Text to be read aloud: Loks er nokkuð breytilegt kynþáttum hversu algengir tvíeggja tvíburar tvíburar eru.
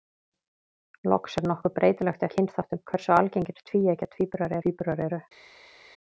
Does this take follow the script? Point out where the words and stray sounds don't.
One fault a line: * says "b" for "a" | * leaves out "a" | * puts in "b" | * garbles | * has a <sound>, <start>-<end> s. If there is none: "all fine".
all fine